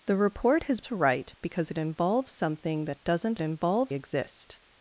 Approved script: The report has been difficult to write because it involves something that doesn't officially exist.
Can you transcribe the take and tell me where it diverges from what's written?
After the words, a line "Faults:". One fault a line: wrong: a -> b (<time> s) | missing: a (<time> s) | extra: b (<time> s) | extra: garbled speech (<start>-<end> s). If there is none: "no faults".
The report has to write because it involves something that doesn't involves exist.
Faults:
missing: been difficult (0.8 s)
wrong: officially -> involves (3.4 s)